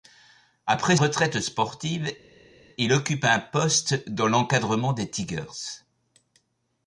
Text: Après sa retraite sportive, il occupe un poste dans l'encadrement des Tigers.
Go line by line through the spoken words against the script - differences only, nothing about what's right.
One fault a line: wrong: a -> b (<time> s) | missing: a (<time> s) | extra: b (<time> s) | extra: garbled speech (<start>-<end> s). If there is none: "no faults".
missing: sa (1.0 s)